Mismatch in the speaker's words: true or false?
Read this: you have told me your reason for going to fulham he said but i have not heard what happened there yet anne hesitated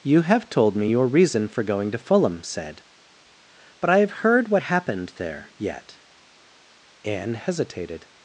true